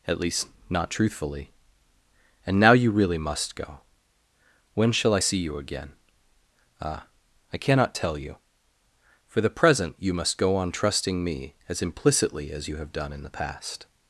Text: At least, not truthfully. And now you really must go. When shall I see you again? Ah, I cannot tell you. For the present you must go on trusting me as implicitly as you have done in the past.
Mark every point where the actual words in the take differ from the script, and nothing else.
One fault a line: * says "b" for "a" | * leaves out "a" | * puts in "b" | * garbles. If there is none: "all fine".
all fine